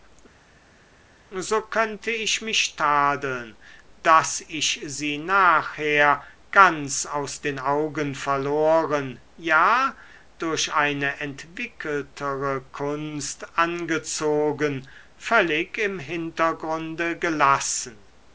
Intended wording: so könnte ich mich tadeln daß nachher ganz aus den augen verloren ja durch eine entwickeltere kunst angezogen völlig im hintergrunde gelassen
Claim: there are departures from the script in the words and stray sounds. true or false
true